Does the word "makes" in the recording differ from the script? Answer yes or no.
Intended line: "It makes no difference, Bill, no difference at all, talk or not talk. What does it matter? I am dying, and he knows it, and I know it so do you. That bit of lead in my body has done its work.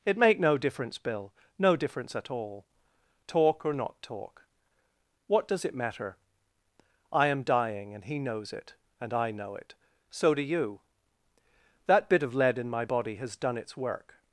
yes